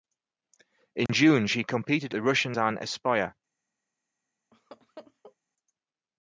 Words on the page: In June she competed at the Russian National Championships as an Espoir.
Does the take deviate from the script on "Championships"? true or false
true